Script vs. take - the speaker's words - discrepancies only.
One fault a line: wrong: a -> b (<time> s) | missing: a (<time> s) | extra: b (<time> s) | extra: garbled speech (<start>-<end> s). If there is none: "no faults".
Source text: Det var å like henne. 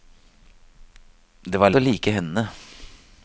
no faults